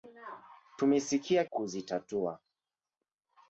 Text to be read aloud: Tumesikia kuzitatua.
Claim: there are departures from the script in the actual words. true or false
false